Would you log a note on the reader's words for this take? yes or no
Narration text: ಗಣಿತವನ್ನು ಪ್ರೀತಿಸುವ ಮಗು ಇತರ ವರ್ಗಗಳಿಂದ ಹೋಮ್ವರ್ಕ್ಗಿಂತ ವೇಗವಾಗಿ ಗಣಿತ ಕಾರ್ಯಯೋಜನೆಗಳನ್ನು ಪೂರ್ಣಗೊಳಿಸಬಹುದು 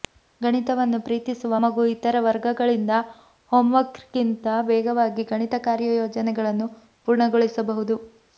no